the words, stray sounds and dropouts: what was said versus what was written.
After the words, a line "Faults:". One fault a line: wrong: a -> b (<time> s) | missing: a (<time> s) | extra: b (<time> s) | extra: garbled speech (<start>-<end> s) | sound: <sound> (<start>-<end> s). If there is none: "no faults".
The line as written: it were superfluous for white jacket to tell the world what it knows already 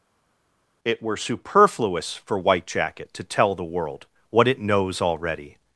it were superfluous for white jacket to tell the world what it knows already
Faults:
no faults